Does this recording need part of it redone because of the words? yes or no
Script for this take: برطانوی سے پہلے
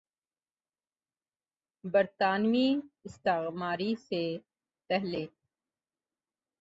yes